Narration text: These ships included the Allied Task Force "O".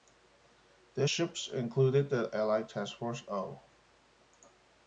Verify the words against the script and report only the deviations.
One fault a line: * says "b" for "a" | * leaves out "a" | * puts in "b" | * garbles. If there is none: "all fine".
all fine